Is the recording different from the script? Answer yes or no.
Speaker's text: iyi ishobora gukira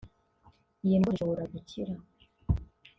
yes